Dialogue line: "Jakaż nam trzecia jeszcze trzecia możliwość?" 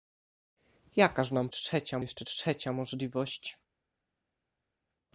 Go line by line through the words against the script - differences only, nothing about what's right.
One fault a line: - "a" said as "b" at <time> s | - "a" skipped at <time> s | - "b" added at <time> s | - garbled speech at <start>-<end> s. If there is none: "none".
none